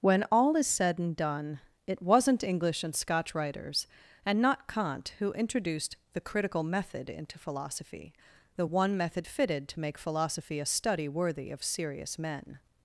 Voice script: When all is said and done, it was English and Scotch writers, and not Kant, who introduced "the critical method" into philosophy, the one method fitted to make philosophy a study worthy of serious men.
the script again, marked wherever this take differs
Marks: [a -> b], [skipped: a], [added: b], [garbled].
When all is said and done, it [was -> wasn't] English and Scotch writers, and not Kant, who introduced "the critical method" into philosophy, the one method fitted to make philosophy a study worthy of serious men.